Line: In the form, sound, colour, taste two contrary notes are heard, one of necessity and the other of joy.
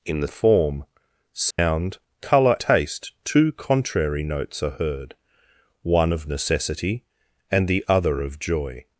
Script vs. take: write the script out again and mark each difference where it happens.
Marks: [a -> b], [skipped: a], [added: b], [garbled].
In the form, sound, colour, taste two contrary notes are heard, one of necessity and the other of joy.